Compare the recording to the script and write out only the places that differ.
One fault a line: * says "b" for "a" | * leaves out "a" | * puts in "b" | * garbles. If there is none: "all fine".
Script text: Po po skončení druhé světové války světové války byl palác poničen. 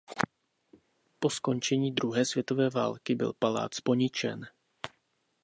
* leaves out "po"
* leaves out "světové války"